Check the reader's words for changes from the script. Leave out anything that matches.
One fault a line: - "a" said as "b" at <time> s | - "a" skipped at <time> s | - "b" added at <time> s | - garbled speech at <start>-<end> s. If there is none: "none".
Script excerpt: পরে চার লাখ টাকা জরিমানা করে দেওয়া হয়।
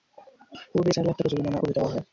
none